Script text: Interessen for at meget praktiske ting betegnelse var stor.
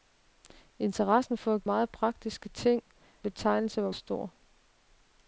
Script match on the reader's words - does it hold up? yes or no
yes